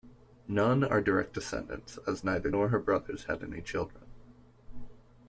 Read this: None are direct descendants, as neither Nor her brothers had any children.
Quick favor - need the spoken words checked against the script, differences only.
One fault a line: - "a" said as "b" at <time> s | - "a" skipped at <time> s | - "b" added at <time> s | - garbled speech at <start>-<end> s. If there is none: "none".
none